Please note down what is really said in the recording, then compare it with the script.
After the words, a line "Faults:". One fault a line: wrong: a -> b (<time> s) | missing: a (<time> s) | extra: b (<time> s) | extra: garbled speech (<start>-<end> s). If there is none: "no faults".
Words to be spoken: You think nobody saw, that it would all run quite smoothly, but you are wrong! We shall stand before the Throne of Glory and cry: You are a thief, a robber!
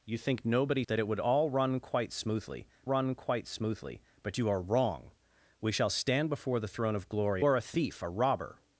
You think nobody that it would all run quite smoothly run quite smoothly, but you are wrong! We shall stand before the Throne of Glory are a thief, a robber!
Faults:
missing: saw (0.8 s)
extra: run quite smoothly (2.8 s)
missing: and cry You (7.4 s)